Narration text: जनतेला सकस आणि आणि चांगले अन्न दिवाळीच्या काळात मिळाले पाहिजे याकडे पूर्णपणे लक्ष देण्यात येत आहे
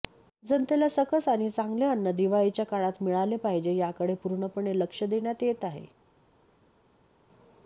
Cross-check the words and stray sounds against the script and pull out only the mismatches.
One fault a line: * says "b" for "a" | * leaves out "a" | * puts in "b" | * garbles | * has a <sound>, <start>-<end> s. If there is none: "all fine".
* leaves out "आणि"